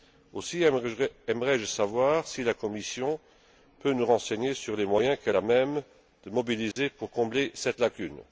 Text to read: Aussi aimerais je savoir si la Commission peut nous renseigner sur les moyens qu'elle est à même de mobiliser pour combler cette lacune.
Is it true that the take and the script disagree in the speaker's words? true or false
true